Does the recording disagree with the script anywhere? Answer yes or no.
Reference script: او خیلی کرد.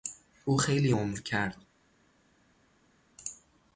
yes